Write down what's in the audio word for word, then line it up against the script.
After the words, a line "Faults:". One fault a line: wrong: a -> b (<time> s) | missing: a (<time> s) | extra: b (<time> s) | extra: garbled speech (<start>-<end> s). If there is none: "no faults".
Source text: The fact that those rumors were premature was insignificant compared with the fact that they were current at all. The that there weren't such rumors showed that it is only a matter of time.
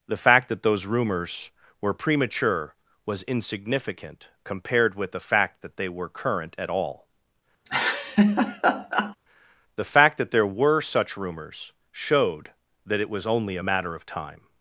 The fact that those rumors were premature was insignificant compared with the fact that they were current at all. The fact that there were such rumors showed that it was only a matter of time.
Faults:
extra: fact (9.8 s)
wrong: weren't -> were (10.5 s)
wrong: is -> was (13.1 s)